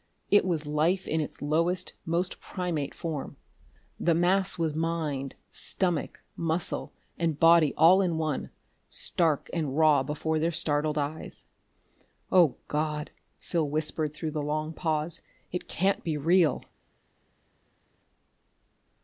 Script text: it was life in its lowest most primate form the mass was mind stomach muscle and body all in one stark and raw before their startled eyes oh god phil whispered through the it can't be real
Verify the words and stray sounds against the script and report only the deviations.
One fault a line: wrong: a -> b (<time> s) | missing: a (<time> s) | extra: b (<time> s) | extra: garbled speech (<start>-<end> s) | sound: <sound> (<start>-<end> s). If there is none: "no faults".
extra: long pause (14.4 s)